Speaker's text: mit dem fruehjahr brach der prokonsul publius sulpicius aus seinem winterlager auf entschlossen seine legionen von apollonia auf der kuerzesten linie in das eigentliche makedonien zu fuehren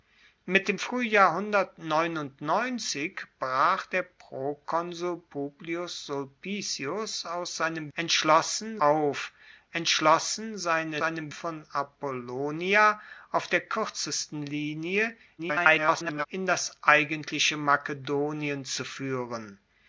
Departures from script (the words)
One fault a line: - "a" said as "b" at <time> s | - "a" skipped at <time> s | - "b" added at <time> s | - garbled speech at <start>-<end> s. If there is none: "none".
- "winterlager" said as "entschlossen" at 7.9 s
- "legionen" said as "seinem" at 11.0 s
- garbled speech at 15.4-16.3 s